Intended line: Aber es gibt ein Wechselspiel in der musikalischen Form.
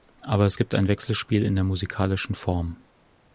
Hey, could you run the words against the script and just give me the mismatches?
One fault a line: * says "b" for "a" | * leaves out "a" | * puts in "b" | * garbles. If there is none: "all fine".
all fine